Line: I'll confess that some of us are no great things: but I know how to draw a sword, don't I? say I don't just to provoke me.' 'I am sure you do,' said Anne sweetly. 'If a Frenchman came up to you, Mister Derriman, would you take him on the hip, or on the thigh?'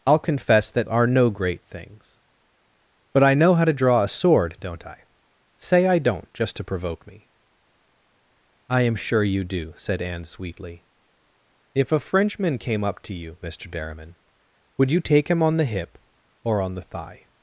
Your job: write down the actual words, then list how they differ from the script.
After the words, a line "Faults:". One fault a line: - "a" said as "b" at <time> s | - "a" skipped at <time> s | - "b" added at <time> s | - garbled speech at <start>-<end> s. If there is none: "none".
I'll confess that are no great things: but I know how to draw a sword, don't I? say I don't just to provoke me.' 'I am sure you do,' said Anne sweetly. 'If a Frenchman came up to you, Mister Derriman, would you take him on the hip, or on the thigh?'
Faults:
- "some of us" skipped at 0.9 s